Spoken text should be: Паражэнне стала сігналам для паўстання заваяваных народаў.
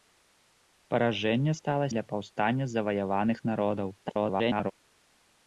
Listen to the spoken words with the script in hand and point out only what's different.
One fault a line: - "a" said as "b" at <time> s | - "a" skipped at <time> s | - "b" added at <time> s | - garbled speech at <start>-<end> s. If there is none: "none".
- "сігналам" skipped at 1.9 s
- garbled speech at 4.0-4.7 s